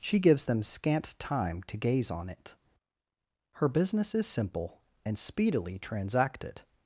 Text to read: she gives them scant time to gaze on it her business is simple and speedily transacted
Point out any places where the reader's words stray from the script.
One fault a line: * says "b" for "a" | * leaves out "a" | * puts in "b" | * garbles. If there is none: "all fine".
all fine